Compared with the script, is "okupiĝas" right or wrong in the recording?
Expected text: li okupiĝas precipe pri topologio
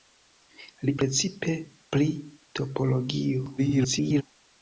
wrong